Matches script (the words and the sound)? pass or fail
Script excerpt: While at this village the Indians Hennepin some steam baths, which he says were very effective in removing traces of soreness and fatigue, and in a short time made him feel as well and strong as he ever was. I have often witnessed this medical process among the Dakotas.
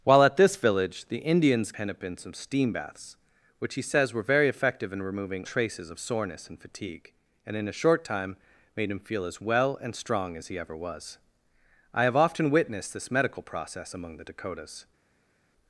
pass